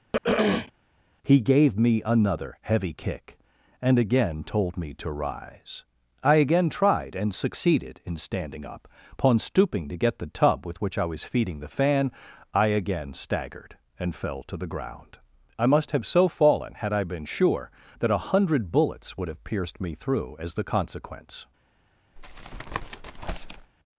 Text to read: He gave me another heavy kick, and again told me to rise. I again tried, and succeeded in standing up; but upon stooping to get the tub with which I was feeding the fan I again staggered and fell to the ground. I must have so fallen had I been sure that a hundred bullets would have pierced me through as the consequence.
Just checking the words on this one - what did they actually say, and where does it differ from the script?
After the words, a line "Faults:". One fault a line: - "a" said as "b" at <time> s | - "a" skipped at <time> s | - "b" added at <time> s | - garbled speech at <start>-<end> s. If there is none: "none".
He gave me another heavy kick, and again told me to rise. I again tried, and succeeded in standing up; upon stooping to get the tub with which I was feeding the fan I again staggered and fell to the ground. I must have so fallen had I been sure that a hundred bullets would have pierced me through as the consequence.
Faults:
- "but" skipped at 8.9 s